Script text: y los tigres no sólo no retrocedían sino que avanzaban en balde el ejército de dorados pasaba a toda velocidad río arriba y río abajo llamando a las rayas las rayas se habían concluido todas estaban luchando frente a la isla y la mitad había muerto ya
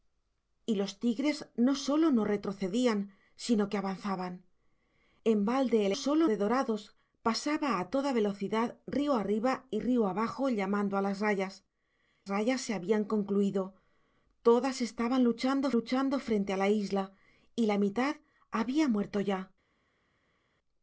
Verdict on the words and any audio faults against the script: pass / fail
fail